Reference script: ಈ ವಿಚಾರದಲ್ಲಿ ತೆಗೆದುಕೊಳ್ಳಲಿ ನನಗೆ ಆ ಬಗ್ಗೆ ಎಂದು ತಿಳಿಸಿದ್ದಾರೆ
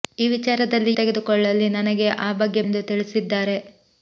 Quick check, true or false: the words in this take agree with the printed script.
true